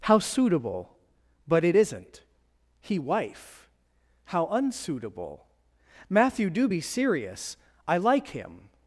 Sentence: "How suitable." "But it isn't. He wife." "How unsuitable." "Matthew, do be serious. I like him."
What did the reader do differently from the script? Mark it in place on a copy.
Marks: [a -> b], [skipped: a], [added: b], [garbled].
"How suitable." "But it isn't. He wife." "How unsuitable." "Matthew, do be serious. I like him."